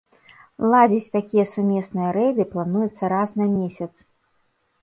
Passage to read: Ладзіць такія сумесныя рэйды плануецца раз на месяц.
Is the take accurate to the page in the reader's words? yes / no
yes